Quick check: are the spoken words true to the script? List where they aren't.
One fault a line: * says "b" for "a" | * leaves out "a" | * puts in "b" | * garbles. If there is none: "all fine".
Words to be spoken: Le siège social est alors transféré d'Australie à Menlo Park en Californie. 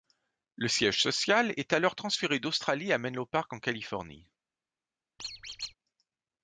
all fine